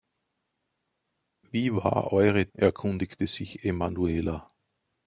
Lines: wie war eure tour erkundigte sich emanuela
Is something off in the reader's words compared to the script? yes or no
yes